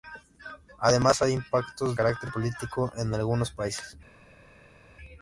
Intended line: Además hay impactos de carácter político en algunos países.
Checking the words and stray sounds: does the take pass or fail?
fail